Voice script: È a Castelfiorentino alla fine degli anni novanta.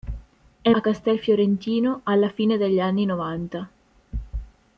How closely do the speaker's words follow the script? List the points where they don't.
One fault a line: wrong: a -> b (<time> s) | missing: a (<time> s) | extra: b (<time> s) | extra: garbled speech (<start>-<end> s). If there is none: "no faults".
no faults